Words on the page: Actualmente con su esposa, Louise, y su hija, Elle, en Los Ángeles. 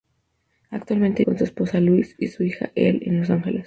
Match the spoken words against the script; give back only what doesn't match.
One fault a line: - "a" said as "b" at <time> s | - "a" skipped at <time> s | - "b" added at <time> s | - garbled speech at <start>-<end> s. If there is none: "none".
none